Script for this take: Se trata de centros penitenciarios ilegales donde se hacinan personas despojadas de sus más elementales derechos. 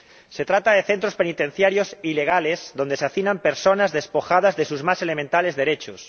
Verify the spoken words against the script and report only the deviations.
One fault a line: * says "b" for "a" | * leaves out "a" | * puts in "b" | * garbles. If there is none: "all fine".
all fine